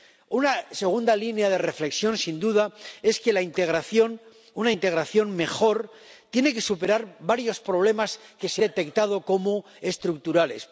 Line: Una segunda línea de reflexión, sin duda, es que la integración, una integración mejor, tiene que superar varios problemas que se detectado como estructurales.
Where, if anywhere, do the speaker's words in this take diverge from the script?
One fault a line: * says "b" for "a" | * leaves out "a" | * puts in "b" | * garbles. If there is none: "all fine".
all fine